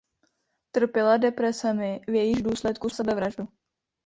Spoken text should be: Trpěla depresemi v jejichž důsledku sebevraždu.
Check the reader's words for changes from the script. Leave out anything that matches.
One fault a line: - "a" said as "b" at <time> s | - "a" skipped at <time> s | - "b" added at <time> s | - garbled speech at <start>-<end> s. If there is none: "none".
none